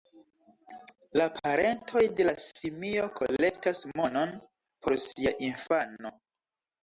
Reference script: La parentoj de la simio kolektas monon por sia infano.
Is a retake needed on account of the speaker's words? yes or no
no